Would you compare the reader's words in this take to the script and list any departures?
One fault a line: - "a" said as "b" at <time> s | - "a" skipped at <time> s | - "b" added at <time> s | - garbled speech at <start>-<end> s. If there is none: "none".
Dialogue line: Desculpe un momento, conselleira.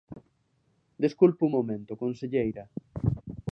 none